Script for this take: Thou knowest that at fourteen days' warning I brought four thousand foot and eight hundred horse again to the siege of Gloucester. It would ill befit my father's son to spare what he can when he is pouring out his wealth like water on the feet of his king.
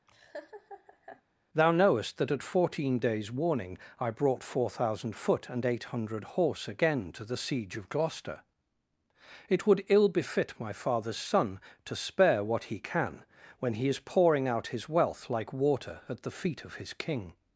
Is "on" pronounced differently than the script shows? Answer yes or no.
yes